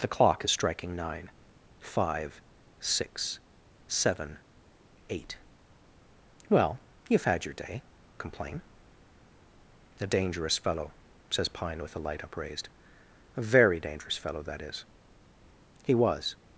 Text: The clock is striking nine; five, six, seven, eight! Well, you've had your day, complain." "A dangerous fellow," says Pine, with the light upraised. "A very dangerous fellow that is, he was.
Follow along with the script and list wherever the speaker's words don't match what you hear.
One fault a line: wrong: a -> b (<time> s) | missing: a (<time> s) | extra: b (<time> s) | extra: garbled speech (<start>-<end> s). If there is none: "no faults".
no faults